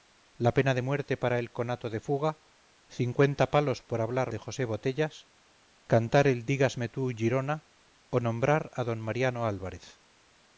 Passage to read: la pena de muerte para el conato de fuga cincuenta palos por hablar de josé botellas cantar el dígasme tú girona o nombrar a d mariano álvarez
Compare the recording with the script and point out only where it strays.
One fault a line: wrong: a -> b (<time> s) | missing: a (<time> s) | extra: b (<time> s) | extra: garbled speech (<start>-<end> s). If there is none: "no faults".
no faults